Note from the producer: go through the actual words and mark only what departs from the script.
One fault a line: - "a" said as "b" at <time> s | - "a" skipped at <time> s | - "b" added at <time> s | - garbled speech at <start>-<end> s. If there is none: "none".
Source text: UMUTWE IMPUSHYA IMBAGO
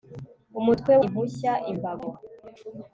none